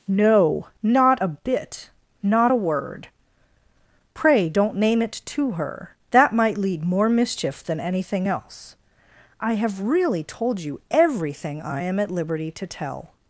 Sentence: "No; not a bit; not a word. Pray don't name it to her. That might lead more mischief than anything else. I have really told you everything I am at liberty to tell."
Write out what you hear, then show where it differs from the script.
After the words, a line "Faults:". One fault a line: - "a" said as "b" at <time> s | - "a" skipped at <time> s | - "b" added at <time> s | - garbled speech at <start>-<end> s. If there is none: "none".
"No; not a bit; not a word. Pray don't name it to her. That might lead more mischief than anything else. I have really told you everything I am at liberty to tell."
Faults:
none